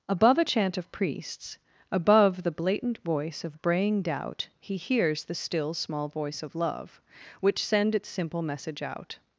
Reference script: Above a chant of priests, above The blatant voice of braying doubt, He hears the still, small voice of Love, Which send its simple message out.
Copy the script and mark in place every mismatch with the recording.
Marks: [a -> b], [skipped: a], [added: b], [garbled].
Above a chant of priests, above The blatant voice of braying doubt, He hears the still, small voice of Love, Which send its simple message out.